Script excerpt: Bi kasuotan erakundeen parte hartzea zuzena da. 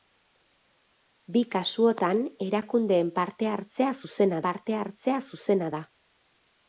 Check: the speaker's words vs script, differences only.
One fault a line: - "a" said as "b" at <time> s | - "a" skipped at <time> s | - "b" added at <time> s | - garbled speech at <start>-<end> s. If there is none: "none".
- "parte hartzea zuzena" added at 4.5 s